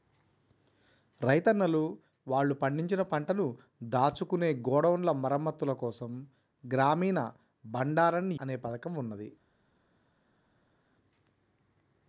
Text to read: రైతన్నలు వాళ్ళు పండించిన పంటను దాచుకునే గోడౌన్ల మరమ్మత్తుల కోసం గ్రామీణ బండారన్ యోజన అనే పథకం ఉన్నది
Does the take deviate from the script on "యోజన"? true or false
true